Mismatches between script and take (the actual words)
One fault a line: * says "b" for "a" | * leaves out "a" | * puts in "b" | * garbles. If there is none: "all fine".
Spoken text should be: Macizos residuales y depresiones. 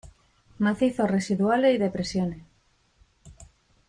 all fine